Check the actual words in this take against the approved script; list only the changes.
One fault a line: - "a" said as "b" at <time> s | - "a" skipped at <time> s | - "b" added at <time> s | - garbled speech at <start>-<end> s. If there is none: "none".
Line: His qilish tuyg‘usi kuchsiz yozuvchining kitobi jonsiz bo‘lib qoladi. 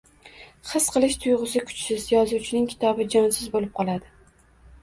none